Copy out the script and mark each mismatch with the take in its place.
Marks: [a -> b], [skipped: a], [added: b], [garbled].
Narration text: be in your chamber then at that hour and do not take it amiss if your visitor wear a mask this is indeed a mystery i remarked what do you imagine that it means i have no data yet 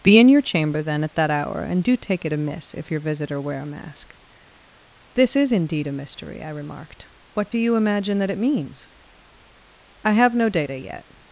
be in your chamber then at that hour and do [skipped: not] take it amiss if your visitor wear a mask this is indeed a mystery i remarked what do you imagine that it means i have no data yet